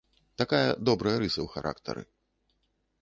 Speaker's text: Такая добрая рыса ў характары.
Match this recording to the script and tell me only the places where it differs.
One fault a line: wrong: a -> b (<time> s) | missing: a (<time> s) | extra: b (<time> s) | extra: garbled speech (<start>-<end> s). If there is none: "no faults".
no faults